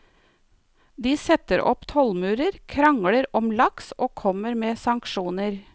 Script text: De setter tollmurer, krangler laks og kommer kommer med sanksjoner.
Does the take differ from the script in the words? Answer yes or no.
yes